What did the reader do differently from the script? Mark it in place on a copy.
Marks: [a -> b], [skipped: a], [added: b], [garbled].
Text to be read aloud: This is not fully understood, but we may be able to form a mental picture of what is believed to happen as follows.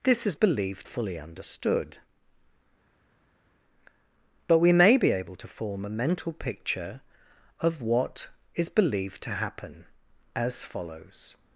This is [not -> believed] fully understood, but we may be able to form a mental picture of what is believed to happen as follows.